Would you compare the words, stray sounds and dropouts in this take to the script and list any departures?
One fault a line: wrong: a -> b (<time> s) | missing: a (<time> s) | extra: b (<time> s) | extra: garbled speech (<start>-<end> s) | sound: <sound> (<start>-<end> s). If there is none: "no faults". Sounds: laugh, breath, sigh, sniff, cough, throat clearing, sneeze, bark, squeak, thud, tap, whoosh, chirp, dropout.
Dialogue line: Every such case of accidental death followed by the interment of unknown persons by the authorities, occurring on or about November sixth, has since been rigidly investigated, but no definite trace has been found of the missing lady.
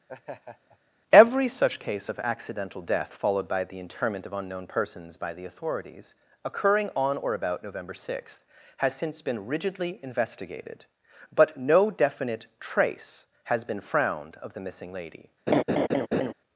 sound: laugh (0.1-0.8 s)
wrong: found -> frowned (13.8 s)
sound: laugh (15.5-16.3 s)